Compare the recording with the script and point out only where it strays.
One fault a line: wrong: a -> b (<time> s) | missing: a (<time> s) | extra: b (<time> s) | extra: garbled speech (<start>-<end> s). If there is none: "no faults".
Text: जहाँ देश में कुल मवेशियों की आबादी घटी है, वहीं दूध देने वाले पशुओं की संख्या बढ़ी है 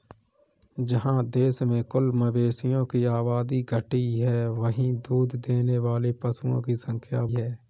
missing: बढ़ी (7.2 s)